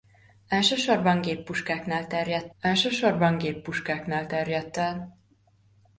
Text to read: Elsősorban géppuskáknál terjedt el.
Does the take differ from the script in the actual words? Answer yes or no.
yes